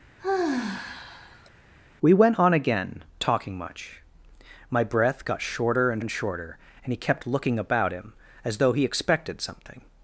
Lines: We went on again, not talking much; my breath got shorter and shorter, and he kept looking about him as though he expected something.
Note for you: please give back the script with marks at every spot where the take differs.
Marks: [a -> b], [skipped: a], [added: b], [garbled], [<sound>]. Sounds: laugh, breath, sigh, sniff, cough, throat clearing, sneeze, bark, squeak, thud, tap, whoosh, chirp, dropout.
[sigh] We went on again, [skipped: not] talking much; my breath got shorter and [added: and] shorter, and he kept looking about him as though he expected something.